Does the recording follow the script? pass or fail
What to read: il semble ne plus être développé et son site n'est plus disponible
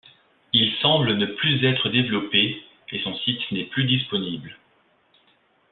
pass